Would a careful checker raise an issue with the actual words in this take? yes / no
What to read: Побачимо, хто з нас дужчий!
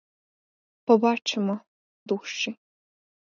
yes